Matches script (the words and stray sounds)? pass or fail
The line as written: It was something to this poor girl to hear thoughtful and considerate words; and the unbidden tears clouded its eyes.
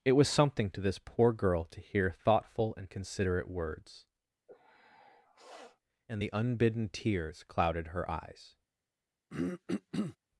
fail